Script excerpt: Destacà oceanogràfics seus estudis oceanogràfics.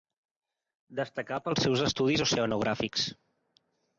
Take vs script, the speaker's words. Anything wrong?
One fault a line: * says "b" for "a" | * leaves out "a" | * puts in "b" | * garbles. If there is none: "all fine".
* says "pels" for "oceanogràfics"